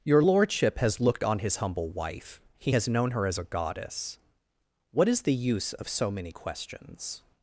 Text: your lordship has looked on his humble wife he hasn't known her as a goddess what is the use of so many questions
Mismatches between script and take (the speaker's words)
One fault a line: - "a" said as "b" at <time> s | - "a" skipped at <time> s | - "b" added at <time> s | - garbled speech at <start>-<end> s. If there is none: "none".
- "hasn't" said as "has" at 2.7 s